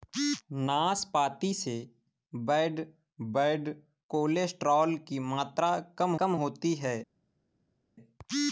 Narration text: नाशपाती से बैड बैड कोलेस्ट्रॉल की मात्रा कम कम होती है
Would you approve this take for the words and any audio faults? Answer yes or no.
yes